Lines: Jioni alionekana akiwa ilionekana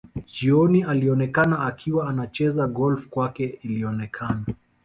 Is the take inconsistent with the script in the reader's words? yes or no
yes